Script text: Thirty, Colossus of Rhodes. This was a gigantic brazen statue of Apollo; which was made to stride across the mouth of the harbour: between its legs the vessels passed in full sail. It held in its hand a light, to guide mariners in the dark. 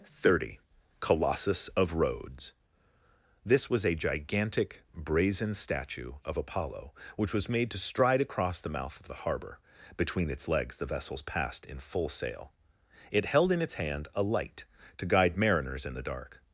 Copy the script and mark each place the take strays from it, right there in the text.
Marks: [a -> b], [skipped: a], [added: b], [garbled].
Thirty, Colossus of Rhodes. This was a gigantic brazen statue of Apollo; which was made to stride across the mouth of the harbour: between its legs the vessels passed in full sail. It held in its hand a light, to guide mariners in the dark.